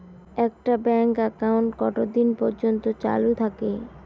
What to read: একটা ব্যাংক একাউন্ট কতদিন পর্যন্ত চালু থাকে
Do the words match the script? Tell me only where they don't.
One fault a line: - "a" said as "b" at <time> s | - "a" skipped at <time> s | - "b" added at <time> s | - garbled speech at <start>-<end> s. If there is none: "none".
none